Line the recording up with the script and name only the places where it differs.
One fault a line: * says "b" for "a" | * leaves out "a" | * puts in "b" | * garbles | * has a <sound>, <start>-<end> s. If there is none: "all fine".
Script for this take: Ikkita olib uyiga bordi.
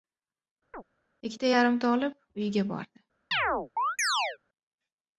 * has a chirp, 0.7-0.8 s
* puts in "yarimta"
* has a chirp, 3.3-4.4 s